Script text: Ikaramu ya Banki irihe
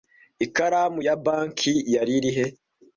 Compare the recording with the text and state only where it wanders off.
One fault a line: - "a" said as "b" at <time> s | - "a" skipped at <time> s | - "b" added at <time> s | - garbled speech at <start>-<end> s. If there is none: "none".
- "yari" added at 1.9 s